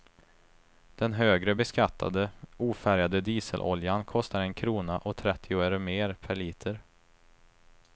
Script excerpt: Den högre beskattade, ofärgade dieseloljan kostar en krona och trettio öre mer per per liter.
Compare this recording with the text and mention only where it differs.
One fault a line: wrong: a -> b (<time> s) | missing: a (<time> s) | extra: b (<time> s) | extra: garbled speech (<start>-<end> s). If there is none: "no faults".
missing: per (6.4 s)